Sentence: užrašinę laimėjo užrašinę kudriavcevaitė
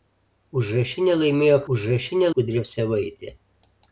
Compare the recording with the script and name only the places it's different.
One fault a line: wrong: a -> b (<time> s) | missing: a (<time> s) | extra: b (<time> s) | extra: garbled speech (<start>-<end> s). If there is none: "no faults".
no faults